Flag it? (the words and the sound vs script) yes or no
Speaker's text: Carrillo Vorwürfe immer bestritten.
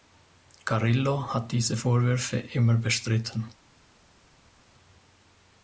yes